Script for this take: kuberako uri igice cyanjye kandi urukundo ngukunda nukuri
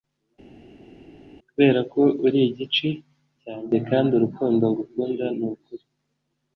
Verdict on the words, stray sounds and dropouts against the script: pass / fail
pass